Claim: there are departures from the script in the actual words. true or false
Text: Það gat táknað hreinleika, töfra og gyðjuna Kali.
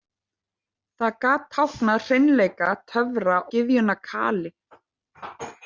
true